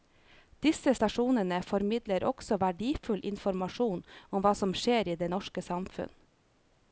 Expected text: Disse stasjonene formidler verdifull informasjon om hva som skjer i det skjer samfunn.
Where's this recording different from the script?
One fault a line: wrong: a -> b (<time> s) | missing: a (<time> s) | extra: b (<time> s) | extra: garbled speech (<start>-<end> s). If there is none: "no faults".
extra: også (2.3 s)
wrong: skjer -> norske (5.4 s)